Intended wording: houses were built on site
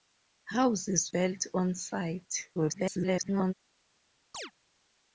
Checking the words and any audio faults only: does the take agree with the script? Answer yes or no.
no